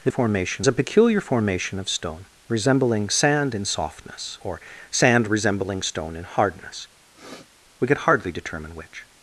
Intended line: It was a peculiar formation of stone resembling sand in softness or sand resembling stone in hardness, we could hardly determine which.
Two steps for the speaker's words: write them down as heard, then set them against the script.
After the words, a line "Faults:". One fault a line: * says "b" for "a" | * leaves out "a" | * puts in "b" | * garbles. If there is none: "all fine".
It formation a peculiar formation of stone resembling sand in softness or sand resembling stone in hardness, we could hardly determine which.
Faults:
* says "formation" for "was"